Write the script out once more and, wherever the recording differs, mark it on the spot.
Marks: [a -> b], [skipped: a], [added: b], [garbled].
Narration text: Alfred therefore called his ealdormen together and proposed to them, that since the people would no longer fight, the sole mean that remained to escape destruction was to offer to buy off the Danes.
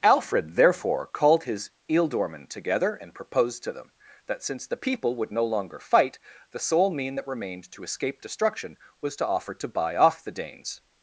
Alfred therefore called his ealdormen together and proposed to them, that since the people would no longer fight, the sole mean that remained to escape destruction was to offer to buy off the Danes.